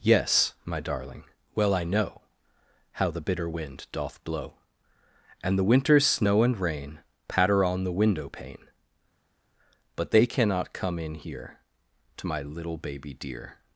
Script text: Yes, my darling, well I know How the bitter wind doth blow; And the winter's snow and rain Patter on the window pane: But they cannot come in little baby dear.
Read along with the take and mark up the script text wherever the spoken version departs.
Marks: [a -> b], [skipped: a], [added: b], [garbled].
Yes, my darling, well I know How the bitter wind doth blow; And the winter's snow and rain Patter on the window pane: But they cannot come in [added: here To my] little baby dear.